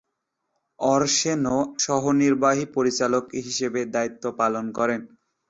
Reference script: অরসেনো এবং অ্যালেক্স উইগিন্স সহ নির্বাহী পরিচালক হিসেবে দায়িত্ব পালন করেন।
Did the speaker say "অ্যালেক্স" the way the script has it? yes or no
no